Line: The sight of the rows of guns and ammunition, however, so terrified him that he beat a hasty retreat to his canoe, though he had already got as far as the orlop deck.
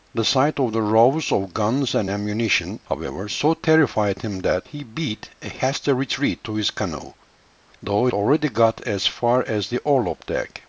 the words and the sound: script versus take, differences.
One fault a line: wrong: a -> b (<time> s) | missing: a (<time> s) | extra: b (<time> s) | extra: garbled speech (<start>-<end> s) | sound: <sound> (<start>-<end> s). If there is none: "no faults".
missing: he had (8.1 s)